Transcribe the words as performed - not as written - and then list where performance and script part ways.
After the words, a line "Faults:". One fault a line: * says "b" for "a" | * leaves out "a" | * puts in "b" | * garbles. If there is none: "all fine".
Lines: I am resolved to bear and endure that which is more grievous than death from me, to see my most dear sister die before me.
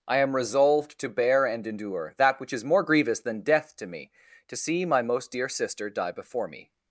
I am resolved to bear and endure that which is more grievous than death to me, to see my most dear sister die before me.
Faults:
* says "to" for "from"